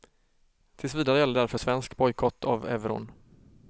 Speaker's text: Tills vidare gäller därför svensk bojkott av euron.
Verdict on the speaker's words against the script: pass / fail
pass